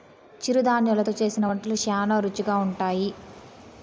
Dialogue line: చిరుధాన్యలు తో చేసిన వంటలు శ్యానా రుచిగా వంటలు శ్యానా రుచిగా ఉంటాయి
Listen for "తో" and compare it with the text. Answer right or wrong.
right